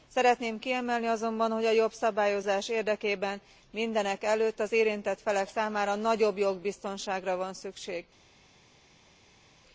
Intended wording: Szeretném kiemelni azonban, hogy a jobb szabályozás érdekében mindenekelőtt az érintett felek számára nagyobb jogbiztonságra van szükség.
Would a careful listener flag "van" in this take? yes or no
no